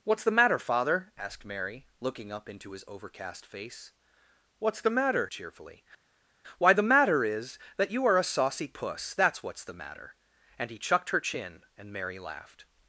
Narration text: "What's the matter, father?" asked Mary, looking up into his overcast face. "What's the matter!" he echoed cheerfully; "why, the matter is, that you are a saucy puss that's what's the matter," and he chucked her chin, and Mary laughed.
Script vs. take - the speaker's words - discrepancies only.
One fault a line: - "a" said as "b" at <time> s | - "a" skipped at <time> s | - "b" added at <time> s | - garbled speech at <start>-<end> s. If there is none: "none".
- "he echoed" skipped at 5.3 s